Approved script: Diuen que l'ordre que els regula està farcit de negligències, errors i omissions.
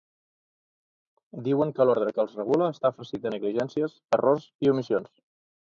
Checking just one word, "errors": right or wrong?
right